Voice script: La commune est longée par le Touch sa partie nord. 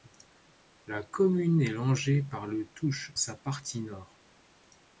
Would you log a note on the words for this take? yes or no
no